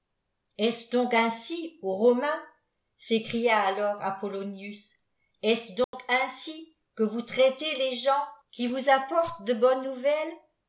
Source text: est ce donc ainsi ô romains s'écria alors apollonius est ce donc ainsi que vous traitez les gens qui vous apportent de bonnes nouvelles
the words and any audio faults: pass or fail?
fail